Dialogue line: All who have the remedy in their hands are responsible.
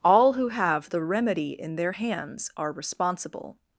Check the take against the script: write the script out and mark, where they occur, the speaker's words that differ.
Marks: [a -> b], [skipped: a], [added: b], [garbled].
All who have the remedy in their hands are responsible.